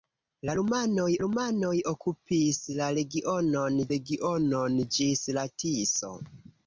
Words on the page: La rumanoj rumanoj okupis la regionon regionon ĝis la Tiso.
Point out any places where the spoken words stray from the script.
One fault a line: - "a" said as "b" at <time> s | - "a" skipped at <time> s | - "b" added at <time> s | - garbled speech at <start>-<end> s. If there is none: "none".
none